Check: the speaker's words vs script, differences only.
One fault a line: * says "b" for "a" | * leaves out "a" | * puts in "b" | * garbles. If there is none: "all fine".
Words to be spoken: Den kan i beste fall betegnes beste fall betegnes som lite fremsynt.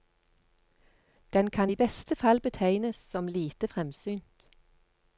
* leaves out "beste fall betegnes"